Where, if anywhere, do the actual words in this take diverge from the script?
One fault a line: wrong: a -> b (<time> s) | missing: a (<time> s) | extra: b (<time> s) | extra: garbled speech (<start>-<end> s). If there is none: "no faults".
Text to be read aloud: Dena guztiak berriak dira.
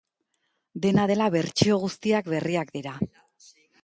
extra: dela bertsio (1.1 s)